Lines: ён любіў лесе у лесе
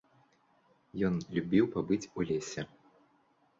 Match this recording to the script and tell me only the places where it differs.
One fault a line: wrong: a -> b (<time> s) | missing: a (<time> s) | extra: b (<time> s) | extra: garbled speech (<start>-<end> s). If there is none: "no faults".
wrong: лесе -> пабыць (1.8 s)